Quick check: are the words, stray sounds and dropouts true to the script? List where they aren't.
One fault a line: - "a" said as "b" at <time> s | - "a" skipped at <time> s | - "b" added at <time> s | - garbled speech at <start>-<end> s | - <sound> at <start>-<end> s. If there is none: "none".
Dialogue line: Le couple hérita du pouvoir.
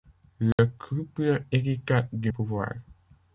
- dropout at 0.5-0.6 s